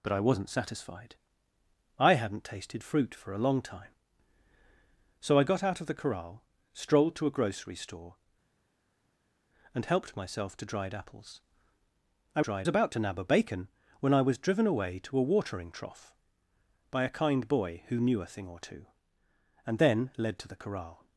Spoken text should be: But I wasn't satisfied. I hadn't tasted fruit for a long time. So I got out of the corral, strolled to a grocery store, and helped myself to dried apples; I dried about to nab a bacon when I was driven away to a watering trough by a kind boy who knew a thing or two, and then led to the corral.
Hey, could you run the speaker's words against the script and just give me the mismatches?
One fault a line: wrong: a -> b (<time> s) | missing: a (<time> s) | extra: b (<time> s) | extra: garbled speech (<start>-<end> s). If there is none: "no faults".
no faults